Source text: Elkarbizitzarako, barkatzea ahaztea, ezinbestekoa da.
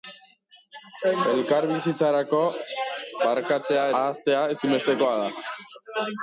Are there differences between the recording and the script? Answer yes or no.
no